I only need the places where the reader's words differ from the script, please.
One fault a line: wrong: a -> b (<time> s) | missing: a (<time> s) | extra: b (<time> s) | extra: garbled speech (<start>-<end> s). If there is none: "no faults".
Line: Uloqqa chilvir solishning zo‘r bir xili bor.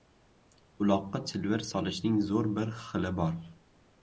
no faults